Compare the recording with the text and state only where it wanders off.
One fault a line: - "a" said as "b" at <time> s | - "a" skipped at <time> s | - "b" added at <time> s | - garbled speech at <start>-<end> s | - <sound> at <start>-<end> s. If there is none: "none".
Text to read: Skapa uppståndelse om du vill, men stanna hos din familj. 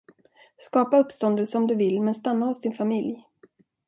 none